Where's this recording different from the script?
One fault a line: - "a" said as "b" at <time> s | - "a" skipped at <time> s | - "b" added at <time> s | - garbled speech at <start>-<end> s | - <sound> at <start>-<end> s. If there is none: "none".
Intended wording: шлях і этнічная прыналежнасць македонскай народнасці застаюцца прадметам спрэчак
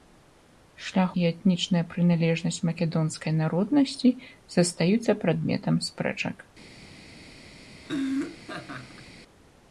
- laugh at 7.8-9.1 s